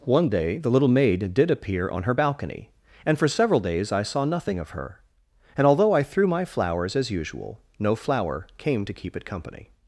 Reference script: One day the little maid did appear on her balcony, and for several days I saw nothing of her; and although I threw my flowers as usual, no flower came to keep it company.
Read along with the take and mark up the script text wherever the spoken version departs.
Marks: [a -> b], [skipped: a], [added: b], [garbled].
One day the little maid did appear on her balcony, and for several days I saw nothing of her; and although I threw my flowers as usual, no flower came to keep it company.